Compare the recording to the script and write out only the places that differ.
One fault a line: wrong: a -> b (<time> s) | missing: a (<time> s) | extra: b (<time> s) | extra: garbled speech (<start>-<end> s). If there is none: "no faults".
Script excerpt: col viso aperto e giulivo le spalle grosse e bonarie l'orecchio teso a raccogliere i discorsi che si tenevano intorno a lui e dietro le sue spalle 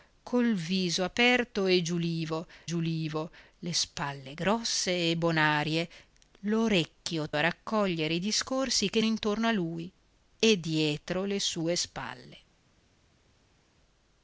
extra: giulivo (2.7 s)
missing: teso (7.3 s)
missing: si tenevano (9.0 s)